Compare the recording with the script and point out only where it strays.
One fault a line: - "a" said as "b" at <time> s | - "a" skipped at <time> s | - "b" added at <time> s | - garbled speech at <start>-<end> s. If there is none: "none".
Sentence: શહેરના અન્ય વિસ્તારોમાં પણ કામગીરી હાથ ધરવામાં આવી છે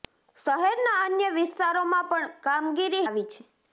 - "હાથ ધરવામાં" skipped at 3.0 s